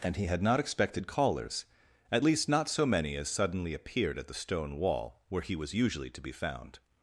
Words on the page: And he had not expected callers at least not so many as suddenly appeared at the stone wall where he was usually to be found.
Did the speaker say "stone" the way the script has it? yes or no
yes